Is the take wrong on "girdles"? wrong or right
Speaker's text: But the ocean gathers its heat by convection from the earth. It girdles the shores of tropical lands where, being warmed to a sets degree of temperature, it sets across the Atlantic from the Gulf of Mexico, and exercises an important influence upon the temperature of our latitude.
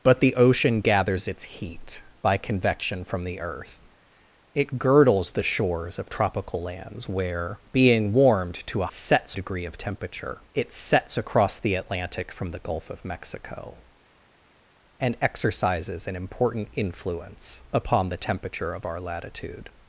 right